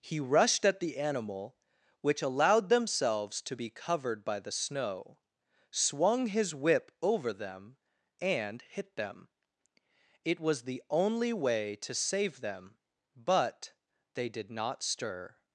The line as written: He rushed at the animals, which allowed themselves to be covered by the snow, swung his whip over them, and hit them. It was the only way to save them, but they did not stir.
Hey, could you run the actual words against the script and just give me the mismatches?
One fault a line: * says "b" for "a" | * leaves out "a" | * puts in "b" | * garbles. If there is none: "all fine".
* says "animal" for "animals"